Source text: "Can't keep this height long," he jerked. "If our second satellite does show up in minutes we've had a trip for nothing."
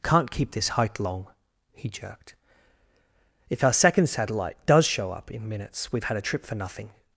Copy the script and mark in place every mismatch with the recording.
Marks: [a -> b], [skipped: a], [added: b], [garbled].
"Can't keep this height long," he jerked. "If our second satellite does show up in minutes we've had a trip for nothing."